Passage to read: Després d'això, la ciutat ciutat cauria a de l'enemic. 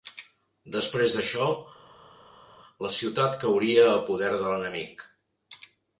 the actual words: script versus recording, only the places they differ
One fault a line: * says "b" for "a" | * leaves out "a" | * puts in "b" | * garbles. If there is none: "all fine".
* leaves out "ciutat"
* puts in "poder"